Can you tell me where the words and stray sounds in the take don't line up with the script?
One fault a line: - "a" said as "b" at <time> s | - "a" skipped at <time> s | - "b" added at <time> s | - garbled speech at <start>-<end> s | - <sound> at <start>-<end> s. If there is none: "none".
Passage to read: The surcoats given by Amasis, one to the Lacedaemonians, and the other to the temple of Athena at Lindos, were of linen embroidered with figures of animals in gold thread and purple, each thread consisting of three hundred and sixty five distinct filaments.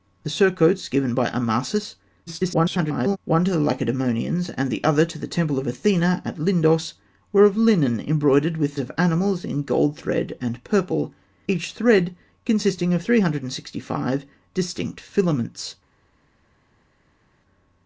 - garbled speech at 2.3-3.2 s
- "figures" skipped at 8.8 s